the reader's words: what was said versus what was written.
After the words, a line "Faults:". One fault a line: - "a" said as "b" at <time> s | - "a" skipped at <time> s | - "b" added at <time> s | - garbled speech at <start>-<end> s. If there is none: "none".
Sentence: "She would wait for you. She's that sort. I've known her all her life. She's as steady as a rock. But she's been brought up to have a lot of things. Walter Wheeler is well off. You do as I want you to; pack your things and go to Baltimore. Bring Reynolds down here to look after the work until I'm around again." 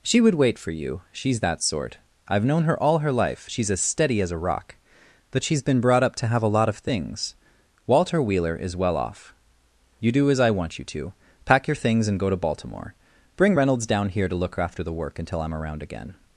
"She would wait for you. She's that sort. I've known her all her life. She's as steady as a rock. But she's been brought up to have a lot of things. Walter Wheeler is well off. You do as I want you to; pack your things and go to Baltimore. Bring Reynolds down here to look after the work until I'm around again."
Faults:
none